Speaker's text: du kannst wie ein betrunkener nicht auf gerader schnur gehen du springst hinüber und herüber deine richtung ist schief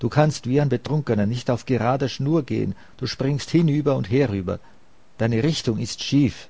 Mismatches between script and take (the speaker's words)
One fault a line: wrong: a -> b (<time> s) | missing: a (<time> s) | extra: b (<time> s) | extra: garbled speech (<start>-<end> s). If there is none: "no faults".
no faults